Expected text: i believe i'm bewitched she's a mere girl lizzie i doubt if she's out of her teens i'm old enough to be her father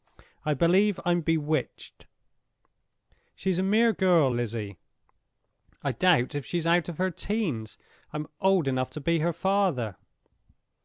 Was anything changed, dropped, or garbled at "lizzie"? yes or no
no